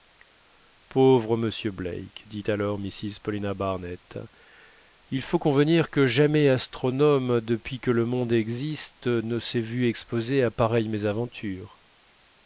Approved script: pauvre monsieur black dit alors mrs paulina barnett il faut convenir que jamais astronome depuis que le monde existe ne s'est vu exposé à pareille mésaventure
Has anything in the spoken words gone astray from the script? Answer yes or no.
no